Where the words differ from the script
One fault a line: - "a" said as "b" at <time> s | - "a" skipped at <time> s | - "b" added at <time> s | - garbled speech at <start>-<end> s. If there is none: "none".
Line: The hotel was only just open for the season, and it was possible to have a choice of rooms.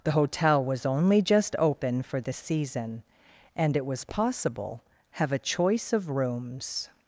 - "to" skipped at 4.8 s